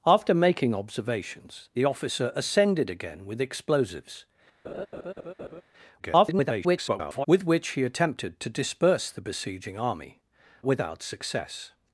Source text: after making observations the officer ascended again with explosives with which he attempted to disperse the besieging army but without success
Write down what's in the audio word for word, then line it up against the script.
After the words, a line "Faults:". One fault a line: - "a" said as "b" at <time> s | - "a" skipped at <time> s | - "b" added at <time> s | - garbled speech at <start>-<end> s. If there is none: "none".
after making observations the officer ascended again with explosives [garbled] with which he attempted to disperse the besieging army without success
Faults:
- garbled speech at 6.0-7.3 s
- "but" skipped at 10.2 s